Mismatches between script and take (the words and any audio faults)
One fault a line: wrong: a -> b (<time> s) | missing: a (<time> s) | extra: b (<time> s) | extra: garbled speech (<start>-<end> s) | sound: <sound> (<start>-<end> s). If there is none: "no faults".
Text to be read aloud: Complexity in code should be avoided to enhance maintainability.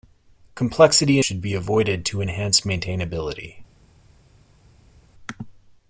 missing: in code (1.2 s)